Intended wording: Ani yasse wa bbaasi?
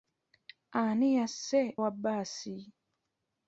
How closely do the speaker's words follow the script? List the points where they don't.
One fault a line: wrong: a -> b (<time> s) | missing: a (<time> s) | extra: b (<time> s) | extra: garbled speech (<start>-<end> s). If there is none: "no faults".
no faults